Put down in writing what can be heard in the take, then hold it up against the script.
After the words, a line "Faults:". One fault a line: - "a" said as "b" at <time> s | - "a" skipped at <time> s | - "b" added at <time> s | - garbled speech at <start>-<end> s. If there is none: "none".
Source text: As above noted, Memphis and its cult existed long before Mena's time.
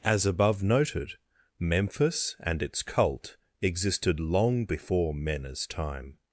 As above noted, Memphis and its cult existed long before Mena's time.
Faults:
none